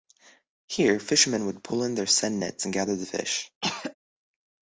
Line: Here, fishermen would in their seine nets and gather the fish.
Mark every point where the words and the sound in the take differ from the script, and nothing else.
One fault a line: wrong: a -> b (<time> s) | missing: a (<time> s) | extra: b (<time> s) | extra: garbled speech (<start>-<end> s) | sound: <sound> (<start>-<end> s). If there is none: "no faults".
extra: pull (1.6 s)
sound: throat clearing (3.6-3.9 s)